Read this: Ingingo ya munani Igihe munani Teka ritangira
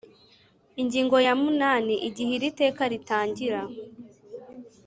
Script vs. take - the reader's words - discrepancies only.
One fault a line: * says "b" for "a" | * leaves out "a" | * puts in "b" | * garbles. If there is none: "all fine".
* says "iri" for "munani"